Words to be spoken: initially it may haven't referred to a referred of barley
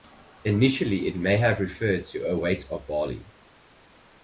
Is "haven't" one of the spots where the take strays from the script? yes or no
yes